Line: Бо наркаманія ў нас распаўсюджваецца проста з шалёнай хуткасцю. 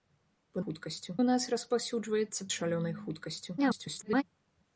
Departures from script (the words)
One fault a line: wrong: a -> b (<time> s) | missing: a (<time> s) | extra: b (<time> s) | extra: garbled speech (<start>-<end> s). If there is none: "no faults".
wrong: наркаманія -> хуткасцю (0.6 s)
missing: проста (2.5 s)
extra: garbled speech (3.6-4.2 s)